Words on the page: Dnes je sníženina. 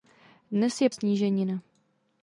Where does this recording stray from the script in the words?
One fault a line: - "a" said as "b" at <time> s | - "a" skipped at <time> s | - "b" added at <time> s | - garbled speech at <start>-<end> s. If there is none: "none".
none